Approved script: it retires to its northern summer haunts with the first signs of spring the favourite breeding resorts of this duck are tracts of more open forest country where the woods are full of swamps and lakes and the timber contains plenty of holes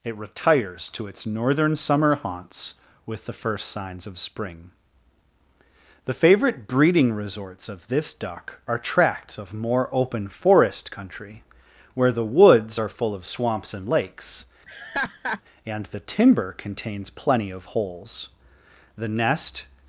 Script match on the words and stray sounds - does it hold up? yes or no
no